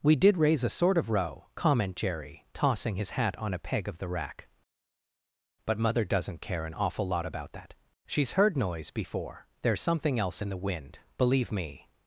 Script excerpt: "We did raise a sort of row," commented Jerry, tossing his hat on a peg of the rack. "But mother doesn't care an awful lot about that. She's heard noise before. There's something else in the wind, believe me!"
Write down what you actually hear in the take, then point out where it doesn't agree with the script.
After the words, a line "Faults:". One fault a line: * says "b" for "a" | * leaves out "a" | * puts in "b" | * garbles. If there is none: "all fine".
"We did raise a sort of row," comment Jerry, tossing his hat on a peg of the rack. "But mother doesn't care an awful lot about that. She's heard noise before. There's something else in the wind, believe me!"
Faults:
* says "comment" for "commented"